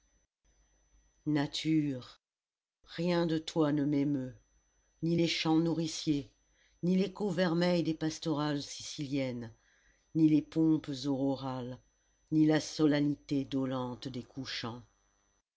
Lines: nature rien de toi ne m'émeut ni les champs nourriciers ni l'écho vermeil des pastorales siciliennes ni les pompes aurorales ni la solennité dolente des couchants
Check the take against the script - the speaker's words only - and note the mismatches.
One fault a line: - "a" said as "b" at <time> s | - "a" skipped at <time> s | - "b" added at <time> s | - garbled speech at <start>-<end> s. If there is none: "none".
none